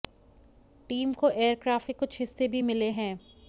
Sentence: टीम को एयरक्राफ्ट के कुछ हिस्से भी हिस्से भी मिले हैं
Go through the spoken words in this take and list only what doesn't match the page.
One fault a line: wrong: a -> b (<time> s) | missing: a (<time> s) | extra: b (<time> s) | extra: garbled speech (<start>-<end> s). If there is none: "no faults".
missing: हिस्से भी (2.6 s)